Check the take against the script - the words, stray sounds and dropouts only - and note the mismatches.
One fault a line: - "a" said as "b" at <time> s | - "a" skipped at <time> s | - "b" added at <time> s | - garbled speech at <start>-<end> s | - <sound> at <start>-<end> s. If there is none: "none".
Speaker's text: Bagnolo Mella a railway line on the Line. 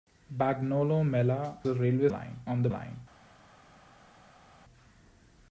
none